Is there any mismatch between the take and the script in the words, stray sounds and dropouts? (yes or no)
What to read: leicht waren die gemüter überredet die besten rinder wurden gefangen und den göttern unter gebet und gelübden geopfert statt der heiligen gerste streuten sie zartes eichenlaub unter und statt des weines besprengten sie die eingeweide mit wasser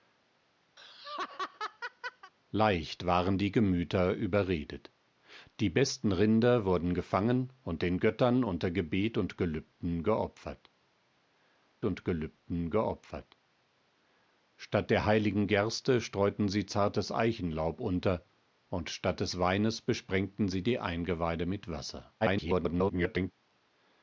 yes